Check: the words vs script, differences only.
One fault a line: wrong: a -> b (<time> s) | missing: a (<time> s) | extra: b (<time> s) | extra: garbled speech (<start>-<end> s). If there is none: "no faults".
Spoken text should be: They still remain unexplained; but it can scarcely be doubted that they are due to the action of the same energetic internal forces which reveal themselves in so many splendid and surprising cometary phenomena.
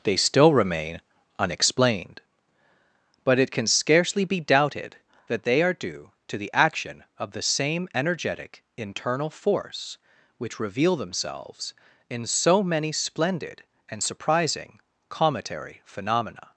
wrong: forces -> force (9.3 s)